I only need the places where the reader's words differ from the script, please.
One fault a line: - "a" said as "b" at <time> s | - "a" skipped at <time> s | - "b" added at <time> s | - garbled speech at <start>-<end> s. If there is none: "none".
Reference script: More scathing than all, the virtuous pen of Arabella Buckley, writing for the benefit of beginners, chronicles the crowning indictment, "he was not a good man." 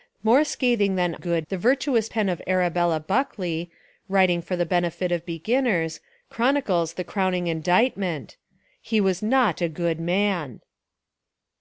- "all" said as "good" at 1.2 s